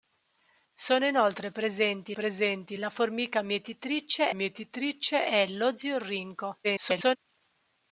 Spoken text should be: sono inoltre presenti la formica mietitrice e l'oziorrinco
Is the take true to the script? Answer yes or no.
no